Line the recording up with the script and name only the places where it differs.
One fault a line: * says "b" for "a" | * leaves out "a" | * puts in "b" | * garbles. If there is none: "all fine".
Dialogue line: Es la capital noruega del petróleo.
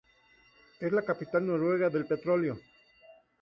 all fine